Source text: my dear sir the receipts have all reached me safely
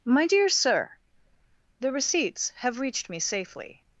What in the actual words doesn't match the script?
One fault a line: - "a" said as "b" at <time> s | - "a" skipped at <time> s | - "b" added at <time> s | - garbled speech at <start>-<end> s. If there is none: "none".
- "all" skipped at 2.8 s